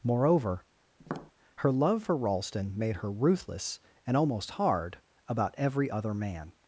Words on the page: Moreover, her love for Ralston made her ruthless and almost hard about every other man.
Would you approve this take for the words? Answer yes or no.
yes